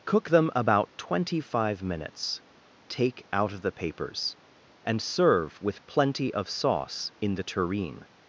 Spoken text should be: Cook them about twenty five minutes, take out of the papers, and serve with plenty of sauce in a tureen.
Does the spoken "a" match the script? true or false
false